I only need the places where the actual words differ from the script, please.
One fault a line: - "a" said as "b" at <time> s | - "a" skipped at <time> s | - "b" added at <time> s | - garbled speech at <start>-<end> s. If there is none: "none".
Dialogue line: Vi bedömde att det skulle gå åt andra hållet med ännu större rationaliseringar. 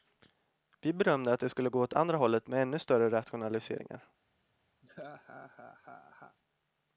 none